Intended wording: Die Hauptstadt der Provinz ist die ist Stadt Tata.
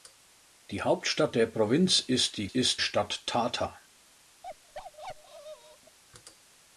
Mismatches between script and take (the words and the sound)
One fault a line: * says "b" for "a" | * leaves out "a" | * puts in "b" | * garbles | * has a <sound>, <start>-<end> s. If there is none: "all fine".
* has a bark, 4.4-6.0 s